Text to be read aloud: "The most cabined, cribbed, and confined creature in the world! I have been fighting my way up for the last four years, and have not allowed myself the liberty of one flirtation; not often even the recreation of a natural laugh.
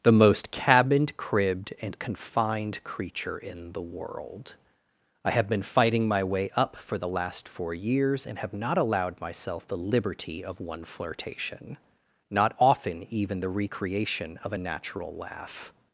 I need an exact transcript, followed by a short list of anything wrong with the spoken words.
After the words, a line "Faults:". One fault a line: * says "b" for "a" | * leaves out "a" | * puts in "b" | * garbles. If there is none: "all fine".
"The most cabined, cribbed, and confined creature in the world! I have been fighting my way up for the last four years, and have not allowed myself the liberty of one flirtation; not often even the recreation of a natural laugh.
Faults:
all fine